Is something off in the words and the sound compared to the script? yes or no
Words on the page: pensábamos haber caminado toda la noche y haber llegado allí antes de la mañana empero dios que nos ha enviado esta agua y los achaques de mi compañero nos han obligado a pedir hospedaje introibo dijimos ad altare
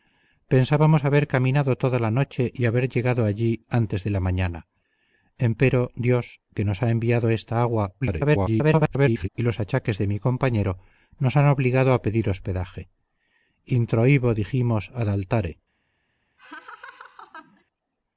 yes